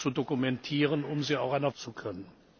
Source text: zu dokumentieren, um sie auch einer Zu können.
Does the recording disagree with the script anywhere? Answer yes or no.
no